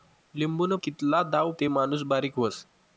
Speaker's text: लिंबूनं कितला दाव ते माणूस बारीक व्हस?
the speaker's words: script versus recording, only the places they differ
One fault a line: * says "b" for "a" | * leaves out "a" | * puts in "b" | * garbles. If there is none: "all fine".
all fine